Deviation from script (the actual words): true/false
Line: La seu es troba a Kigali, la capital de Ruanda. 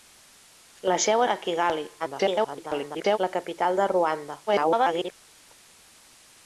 true